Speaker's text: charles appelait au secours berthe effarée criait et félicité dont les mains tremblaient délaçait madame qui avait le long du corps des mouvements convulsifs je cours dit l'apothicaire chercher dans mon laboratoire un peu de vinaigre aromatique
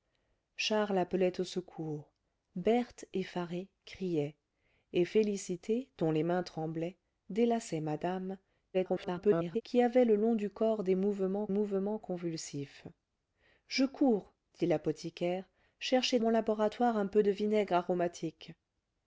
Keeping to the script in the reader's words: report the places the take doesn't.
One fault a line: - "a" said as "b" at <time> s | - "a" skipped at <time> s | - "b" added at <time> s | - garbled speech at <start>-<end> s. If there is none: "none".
- garbled speech at 8.7-9.6 s
- "mouvements" added at 11.5 s
- "dans" skipped at 16.2 s